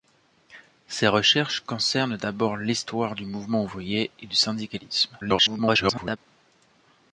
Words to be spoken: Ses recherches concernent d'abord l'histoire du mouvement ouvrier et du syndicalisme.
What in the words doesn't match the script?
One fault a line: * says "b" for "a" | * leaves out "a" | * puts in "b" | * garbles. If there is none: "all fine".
* garbles